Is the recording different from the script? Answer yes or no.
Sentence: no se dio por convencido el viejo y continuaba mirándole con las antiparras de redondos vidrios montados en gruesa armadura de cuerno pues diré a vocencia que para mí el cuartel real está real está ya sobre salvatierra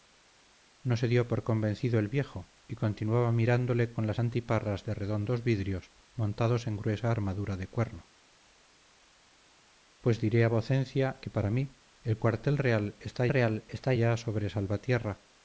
no